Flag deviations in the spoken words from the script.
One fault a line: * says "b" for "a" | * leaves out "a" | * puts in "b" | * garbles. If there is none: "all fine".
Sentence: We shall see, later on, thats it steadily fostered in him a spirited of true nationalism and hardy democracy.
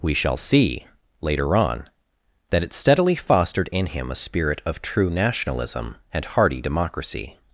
* says "that" for "thats"
* says "spirit" for "spirited"